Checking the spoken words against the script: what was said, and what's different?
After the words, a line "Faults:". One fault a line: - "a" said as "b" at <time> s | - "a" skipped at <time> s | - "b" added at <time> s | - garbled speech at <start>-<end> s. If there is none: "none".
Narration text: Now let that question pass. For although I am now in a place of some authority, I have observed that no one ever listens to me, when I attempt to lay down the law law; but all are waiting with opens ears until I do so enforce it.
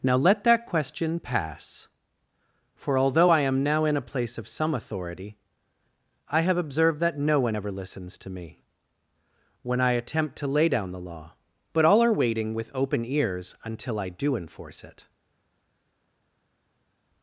Now let that question pass. For although I am now in a place of some authority, I have observed that no one ever listens to me, when I attempt to lay down the law; but all are waiting with open ears until I do enforce it.
Faults:
- "law" skipped at 11.3 s
- "opens" said as "open" at 12.7 s
- "so" skipped at 14.4 s